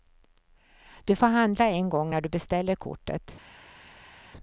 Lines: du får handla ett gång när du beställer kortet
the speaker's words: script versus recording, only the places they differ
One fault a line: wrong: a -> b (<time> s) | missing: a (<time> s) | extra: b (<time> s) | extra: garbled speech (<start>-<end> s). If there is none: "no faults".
wrong: ett -> en (1.6 s)